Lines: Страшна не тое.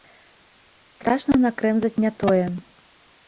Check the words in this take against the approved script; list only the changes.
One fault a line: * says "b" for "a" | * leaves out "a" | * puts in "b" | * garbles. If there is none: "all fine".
* puts in "накрэмзаць"